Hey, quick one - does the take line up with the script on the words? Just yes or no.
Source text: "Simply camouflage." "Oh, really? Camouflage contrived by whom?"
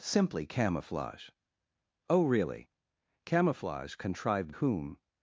no